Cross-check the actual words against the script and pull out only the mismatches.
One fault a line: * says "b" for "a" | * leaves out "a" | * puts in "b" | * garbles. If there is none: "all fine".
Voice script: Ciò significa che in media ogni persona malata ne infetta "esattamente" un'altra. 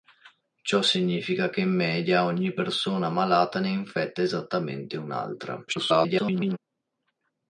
* garbles